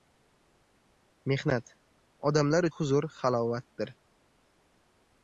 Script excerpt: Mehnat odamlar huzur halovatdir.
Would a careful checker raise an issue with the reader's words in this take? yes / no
no